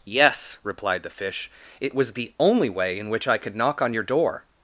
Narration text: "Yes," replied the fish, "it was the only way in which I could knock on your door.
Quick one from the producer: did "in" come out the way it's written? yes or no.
yes